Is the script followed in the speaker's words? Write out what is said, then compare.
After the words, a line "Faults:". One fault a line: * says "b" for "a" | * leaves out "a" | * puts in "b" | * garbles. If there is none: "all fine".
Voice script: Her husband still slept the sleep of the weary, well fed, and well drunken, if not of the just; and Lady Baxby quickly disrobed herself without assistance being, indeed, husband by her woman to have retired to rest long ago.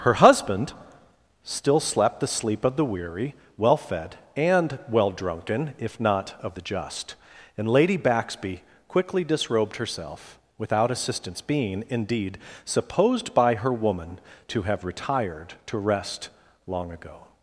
Her husband still slept the sleep of the weary, well fed, and well drunken, if not of the just; and Lady Baxby quickly disrobed herself without assistance being, indeed, supposed by her woman to have retired to rest long ago.
Faults:
* says "supposed" for "husband"